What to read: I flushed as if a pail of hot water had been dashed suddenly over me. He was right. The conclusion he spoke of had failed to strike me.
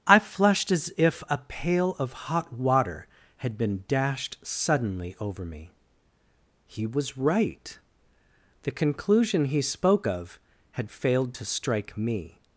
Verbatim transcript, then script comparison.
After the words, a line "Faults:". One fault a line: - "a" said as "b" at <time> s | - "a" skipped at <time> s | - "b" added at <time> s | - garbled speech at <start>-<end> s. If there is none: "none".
I flushed as if a pail of hot water had been dashed suddenly over me. He was right. The conclusion he spoke of had failed to strike me.
Faults:
none